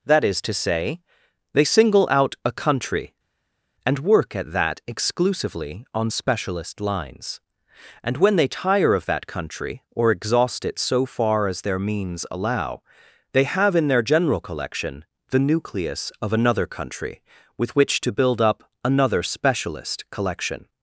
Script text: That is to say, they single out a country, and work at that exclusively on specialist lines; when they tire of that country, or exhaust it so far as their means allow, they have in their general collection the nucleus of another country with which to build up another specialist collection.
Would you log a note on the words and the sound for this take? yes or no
yes